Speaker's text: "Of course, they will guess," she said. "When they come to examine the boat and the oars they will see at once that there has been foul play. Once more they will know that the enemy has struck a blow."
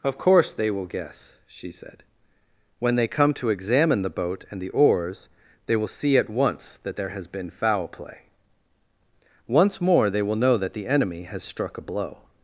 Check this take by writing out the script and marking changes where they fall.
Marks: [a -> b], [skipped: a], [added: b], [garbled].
"Of course, they will guess," she said. "When they come to examine the boat and the oars they will see at once that there has been foul play. Once more they will know that the enemy has struck a blow."